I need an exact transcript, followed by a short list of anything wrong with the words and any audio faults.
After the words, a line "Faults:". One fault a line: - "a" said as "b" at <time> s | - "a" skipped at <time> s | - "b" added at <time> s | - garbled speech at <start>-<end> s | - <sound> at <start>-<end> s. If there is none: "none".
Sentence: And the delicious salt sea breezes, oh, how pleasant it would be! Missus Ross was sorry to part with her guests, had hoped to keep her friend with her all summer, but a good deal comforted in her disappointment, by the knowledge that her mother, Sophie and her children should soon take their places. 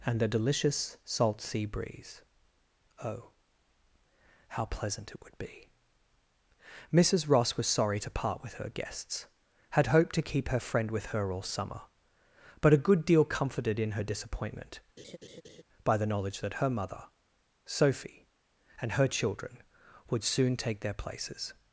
And the delicious salt sea breeze, oh, how pleasant it would be! Missus Ross was sorry to part with her guests, had hoped to keep her friend with her all summer, but a good deal comforted in her disappointment, by the knowledge that her mother, Sophie and her children would soon take their places.
Faults:
- "breezes" said as "breeze" at 1.6 s
- laugh at 15.0-15.6 s
- "should" said as "would" at 20.1 s